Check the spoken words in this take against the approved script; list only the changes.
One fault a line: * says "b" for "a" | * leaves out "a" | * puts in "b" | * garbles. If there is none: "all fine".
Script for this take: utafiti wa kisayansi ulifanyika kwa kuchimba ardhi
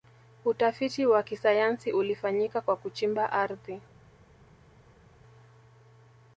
all fine